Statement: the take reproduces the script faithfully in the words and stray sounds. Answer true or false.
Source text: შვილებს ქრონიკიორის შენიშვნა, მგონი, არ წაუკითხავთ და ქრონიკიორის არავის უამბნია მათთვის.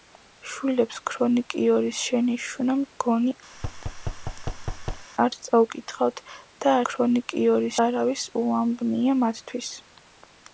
false